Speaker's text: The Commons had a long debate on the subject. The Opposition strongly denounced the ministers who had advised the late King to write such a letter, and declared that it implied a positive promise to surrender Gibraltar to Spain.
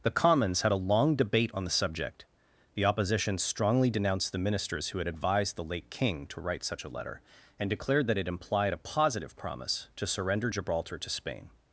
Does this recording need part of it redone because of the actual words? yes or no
no